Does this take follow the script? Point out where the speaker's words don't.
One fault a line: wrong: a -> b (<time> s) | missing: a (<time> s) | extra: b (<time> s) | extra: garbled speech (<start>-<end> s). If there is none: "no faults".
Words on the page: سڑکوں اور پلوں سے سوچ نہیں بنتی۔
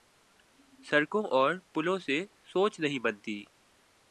no faults